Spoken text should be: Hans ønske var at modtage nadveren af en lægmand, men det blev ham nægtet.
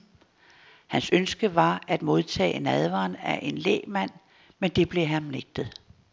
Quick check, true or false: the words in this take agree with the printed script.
true